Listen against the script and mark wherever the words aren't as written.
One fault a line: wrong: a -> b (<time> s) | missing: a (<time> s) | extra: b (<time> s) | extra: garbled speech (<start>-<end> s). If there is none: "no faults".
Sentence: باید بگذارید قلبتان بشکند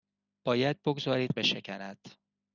missing: قلبتان (1.3 s)